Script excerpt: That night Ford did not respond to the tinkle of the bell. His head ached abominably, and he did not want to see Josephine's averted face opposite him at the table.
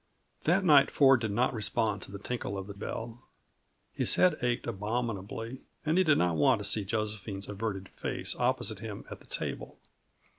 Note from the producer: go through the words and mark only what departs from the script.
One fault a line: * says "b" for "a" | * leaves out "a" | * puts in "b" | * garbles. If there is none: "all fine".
all fine